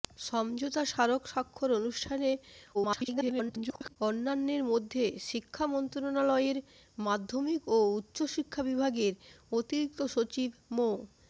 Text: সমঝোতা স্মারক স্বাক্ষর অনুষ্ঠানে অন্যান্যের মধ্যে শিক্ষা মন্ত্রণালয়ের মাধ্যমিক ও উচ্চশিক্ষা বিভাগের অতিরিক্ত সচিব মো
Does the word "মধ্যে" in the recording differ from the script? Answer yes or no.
no